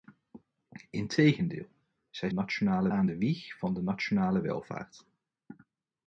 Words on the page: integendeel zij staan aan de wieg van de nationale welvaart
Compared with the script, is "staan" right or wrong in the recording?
wrong